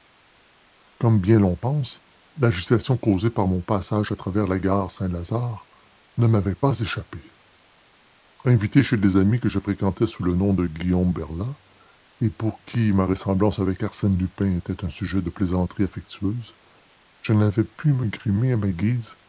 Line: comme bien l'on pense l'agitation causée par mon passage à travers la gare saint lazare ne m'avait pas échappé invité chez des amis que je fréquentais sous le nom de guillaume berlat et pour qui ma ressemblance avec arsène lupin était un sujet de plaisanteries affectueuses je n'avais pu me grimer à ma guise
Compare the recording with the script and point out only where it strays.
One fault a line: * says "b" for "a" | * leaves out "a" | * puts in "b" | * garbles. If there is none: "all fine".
all fine